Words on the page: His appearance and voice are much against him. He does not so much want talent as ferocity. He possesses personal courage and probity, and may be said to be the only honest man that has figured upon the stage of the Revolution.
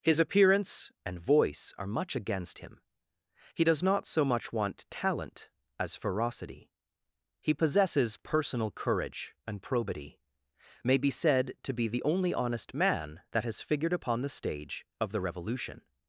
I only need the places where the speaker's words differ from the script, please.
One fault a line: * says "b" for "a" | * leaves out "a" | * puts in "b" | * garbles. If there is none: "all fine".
* leaves out "and"